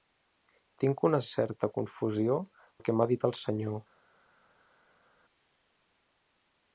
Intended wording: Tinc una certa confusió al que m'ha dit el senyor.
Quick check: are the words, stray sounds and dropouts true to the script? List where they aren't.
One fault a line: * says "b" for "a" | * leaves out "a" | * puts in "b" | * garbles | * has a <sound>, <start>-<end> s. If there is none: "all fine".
all fine